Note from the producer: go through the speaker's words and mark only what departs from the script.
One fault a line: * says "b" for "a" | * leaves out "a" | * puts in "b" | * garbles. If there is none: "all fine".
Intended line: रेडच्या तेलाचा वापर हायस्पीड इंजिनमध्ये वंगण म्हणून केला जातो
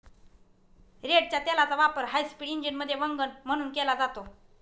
all fine